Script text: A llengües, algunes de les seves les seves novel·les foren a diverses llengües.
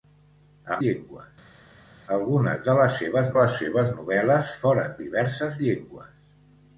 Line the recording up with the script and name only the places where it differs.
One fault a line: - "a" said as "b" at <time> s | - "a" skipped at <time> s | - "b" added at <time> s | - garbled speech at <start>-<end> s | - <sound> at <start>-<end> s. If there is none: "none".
none